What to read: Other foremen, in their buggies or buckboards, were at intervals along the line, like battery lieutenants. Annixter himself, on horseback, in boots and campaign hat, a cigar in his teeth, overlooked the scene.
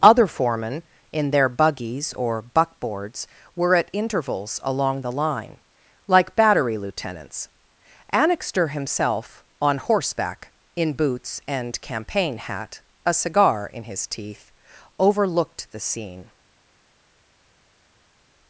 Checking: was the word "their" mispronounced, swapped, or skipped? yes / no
no